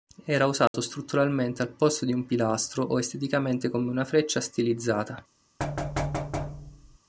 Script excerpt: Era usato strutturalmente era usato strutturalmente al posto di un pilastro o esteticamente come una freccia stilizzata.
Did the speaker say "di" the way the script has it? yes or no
yes